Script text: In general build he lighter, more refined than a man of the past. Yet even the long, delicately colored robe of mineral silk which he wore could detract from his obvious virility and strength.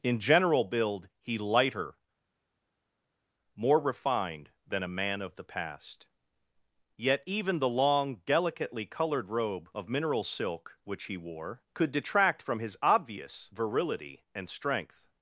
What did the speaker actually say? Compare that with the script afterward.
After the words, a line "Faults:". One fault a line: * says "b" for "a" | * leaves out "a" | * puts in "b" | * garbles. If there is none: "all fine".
In general build he lighter, more refined than a man of the past. Yet even the long, delicately colored robe of mineral silk which he wore could detract from his obvious virility and strength.
Faults:
all fine